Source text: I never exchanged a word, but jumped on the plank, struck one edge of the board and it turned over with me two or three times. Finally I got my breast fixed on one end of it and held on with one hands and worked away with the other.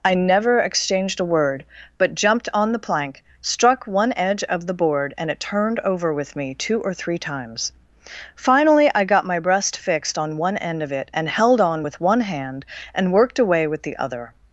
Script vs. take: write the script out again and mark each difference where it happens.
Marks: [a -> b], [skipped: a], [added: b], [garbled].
I never exchanged a word, but jumped on the plank, struck one edge of the board and it turned over with me two or three times. Finally I got my breast fixed on one end of it and held on with one [hands -> hand] and worked away with the other.